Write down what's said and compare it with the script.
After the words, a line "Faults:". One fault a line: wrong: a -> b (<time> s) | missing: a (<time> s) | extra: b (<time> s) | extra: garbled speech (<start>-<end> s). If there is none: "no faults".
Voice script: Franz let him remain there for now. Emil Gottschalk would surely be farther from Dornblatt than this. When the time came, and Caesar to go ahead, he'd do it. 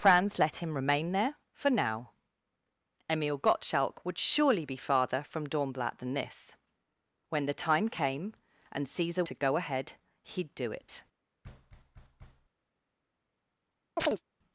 Franz let him remain there for now. Emil Gottschalk would surely be farther from Dornblatt than this. When the time came, and Caesar to go ahead, he'd do it.
Faults:
no faults